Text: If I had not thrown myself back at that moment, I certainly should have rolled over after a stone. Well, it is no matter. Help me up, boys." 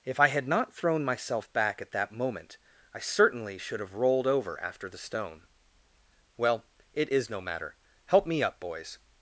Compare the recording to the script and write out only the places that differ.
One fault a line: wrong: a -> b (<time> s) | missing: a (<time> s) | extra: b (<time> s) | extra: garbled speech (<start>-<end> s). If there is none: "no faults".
wrong: a -> the (4.9 s)